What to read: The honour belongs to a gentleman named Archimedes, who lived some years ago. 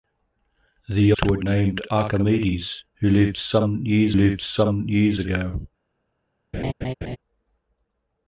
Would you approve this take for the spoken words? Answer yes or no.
no